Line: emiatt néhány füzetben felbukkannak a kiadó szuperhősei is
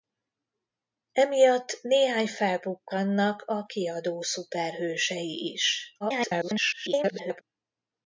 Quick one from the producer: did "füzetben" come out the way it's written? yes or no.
no